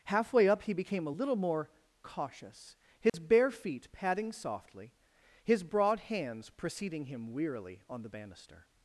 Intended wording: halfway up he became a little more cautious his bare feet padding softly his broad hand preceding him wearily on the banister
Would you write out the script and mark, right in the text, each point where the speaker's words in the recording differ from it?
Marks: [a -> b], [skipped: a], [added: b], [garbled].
halfway up he became a little more cautious his bare feet padding softly his broad [hand -> hands] preceding him wearily on the banister